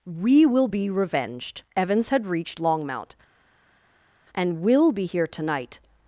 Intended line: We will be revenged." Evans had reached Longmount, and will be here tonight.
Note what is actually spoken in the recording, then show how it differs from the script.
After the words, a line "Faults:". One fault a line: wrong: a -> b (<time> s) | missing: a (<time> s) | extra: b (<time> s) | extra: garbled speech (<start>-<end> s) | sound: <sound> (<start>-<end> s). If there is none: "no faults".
We will be revenged." Evans had reached Longmount, and will be here tonight.
Faults:
no faults